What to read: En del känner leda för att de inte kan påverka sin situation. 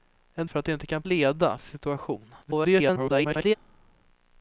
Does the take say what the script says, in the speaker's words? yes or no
no